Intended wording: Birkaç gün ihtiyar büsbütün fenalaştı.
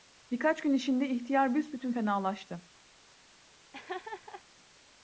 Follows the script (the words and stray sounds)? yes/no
no